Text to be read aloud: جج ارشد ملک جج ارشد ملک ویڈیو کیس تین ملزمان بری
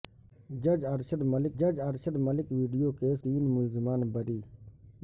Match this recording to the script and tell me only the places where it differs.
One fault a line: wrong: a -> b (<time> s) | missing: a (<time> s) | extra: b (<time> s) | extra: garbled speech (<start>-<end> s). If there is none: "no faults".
no faults